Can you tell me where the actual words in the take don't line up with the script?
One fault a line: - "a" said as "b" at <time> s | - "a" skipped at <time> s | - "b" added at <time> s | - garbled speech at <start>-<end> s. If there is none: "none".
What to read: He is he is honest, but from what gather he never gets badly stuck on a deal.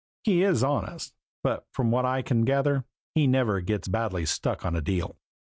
- "he is" skipped at 0.6 s
- "I can" added at 2.0 s